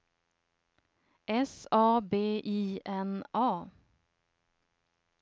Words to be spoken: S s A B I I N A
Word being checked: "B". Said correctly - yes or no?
yes